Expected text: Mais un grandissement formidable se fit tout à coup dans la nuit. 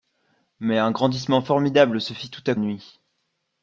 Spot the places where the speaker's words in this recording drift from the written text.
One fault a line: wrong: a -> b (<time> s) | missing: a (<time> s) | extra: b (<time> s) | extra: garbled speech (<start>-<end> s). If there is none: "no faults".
missing: coup dans la (2.5 s)